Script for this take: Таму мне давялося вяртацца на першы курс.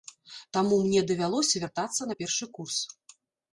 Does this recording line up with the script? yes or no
yes